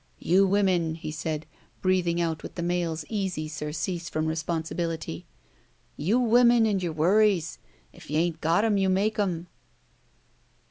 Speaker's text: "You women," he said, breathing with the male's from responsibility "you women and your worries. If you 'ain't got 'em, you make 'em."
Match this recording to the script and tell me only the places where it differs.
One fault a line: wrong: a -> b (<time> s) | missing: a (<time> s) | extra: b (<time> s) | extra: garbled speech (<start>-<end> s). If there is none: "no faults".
extra: out (2.2 s)
extra: easy surcease (3.1 s)